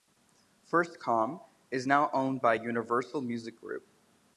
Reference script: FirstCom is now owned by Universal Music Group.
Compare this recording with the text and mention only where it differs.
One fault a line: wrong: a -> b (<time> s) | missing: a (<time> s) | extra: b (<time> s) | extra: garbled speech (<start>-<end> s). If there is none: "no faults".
no faults